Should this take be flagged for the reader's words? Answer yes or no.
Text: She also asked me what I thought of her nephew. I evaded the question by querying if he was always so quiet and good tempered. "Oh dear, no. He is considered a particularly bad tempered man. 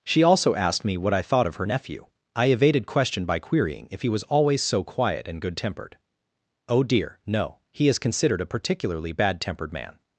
yes